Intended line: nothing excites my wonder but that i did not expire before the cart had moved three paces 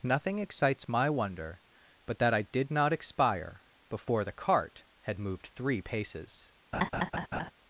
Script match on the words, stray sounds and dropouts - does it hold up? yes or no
no